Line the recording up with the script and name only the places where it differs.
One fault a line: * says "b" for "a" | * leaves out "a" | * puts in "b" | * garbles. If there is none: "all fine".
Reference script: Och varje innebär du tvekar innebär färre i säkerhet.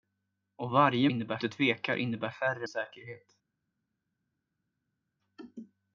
all fine